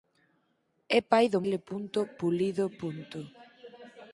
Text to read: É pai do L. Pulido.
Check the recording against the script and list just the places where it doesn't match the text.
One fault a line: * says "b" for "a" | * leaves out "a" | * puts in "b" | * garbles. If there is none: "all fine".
all fine